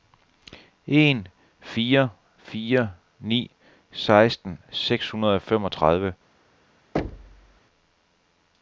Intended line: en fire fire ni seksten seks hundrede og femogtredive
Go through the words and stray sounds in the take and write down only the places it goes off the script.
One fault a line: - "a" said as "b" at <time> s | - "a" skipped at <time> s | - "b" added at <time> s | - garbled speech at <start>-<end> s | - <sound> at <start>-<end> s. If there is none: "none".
- thud at 7.0-7.6 s